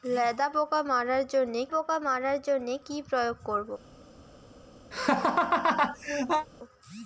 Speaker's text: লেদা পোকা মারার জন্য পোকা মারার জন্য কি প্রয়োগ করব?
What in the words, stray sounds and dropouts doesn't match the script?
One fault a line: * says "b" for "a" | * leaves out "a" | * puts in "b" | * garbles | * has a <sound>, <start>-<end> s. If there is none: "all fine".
* has a laugh, 4.9-6.5 s